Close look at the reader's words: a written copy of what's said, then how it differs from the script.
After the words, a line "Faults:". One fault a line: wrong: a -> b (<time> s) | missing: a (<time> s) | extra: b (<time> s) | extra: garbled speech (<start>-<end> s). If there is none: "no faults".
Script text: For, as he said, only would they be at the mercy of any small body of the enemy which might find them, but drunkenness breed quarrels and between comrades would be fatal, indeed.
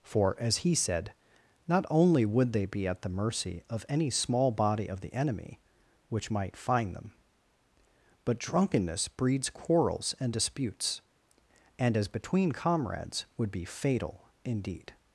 For, as he said, not only would they be at the mercy of any small body of the enemy which might find them, but drunkenness breeds quarrels and disputes, and as between comrades would be fatal, indeed.
Faults:
extra: not (1.7 s)
wrong: breed -> breeds (9.1 s)
extra: disputes and as (10.3 s)